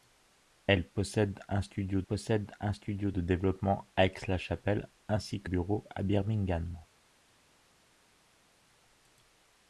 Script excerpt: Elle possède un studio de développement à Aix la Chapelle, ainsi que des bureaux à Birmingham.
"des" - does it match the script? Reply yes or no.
no